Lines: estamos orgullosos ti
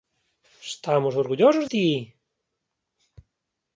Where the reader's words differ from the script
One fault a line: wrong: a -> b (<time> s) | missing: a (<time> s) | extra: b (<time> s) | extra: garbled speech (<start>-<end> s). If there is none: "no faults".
no faults